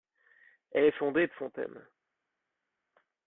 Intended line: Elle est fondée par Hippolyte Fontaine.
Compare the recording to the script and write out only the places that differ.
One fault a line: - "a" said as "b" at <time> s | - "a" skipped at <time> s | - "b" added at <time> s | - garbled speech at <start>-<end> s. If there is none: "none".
- "par Hippolyte" skipped at 1.3 s